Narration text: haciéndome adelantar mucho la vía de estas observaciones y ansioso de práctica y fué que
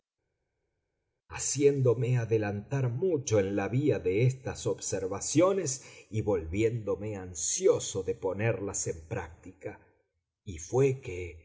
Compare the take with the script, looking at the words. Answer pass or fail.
fail